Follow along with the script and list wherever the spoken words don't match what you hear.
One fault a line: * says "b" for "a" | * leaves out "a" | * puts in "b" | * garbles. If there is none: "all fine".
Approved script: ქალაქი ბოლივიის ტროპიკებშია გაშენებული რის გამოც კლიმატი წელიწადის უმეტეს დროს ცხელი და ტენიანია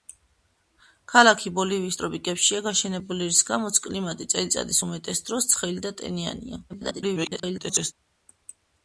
* garbles